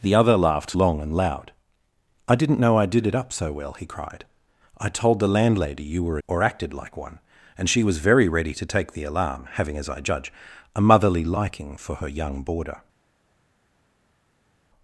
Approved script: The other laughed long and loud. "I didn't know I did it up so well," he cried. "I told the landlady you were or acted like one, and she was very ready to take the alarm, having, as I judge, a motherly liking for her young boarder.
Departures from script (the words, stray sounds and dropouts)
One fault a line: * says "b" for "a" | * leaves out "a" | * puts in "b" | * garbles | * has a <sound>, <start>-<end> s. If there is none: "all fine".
all fine